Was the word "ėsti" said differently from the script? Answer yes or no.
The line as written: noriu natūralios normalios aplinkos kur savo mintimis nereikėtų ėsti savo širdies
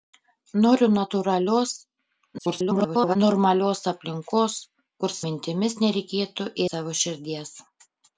yes